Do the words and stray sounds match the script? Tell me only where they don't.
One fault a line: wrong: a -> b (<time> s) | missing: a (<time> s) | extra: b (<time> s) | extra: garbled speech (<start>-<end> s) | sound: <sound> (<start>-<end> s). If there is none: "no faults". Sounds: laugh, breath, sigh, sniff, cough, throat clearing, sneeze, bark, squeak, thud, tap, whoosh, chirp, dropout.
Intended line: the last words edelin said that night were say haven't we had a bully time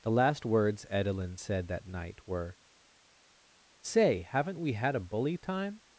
no faults